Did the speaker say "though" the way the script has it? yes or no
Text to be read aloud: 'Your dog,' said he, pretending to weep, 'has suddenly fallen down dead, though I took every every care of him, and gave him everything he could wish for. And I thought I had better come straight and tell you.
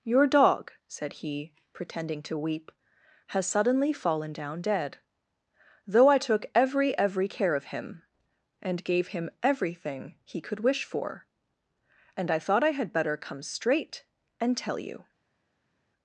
yes